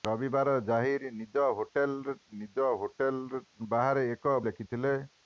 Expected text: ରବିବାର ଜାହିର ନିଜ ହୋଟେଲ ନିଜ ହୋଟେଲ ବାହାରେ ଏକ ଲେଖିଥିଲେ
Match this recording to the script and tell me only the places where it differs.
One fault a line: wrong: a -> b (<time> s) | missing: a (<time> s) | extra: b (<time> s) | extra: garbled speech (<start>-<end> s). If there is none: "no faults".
no faults